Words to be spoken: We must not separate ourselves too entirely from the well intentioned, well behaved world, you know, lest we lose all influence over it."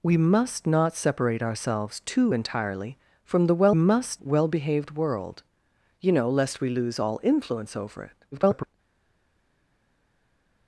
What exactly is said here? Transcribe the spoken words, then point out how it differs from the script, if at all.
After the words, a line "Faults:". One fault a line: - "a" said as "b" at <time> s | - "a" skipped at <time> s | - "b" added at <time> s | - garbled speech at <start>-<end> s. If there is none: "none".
We must not separate ourselves too entirely from the well must, well behaved world, you know, lest we lose all influence over it." [garbled]
Faults:
- "intentioned" said as "must" at 3.7 s
- garbled speech at 8.3-8.8 s